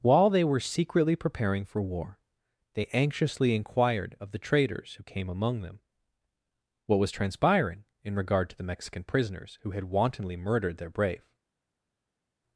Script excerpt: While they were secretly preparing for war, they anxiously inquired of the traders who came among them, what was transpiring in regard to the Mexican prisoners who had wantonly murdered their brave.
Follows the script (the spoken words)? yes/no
yes